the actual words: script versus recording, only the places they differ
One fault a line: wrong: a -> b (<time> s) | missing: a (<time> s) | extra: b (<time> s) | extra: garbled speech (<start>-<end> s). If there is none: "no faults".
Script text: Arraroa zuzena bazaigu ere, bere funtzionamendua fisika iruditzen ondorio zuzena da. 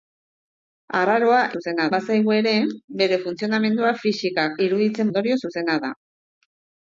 no faults